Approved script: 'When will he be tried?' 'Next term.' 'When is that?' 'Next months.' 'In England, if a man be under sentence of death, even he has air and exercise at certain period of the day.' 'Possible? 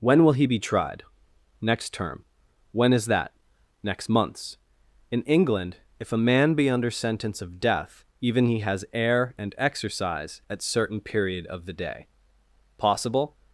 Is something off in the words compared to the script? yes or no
no